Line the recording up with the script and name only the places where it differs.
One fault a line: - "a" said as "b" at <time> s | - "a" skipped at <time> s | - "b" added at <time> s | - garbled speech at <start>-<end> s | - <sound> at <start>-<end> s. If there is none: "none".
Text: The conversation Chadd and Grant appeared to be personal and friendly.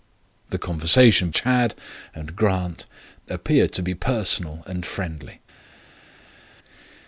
none